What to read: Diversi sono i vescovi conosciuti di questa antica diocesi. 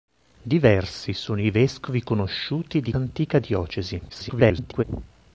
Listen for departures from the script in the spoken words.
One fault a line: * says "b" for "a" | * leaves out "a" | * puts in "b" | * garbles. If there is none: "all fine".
* leaves out "questa"
* garbles